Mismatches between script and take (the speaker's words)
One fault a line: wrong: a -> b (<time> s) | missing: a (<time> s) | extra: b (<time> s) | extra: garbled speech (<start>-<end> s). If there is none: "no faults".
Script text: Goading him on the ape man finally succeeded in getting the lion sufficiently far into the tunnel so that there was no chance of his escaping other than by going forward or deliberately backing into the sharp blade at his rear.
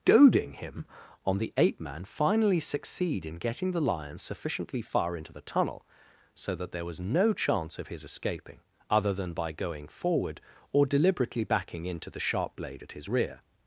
wrong: succeeded -> succeed (2.6 s)